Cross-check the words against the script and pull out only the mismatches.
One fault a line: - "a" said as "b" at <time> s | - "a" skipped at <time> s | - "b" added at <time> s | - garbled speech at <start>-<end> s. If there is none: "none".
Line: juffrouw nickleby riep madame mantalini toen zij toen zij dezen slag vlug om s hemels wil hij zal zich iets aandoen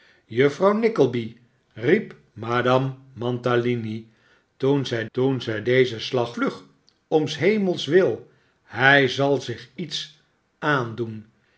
none